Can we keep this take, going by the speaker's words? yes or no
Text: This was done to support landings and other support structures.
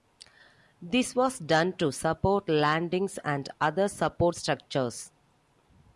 yes